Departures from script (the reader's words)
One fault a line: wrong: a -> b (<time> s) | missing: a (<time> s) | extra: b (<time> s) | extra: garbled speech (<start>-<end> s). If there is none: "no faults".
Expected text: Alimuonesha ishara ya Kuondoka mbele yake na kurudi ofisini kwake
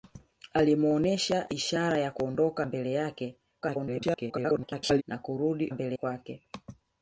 extra: garbled speech (3.6-5.0 s)
wrong: ofisini -> mbele (5.7 s)